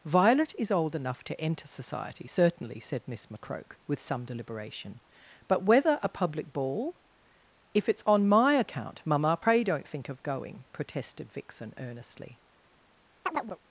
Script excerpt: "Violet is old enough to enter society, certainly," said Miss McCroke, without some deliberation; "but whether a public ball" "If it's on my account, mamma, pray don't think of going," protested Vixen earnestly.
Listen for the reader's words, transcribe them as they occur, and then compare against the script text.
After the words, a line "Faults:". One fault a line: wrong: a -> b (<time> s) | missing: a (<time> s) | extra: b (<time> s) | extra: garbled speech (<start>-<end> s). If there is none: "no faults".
"Violet is old enough to enter society, certainly," said Miss McCroke, with some deliberation; "but whether a public ball" "If it's on my account, mamma, pray don't think of going," protested Vixen earnestly.
Faults:
wrong: without -> with (3.9 s)